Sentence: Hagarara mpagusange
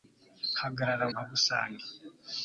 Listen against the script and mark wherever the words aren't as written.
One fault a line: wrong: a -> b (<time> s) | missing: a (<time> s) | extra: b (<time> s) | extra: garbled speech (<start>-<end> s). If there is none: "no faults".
no faults